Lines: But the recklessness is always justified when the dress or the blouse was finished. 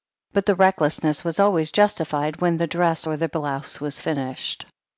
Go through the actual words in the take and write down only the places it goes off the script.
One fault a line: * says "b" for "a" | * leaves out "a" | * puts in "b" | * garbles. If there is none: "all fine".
* says "was" for "is"